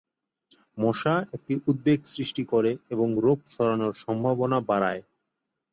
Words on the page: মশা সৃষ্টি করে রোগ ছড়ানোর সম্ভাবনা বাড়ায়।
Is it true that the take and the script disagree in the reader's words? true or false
true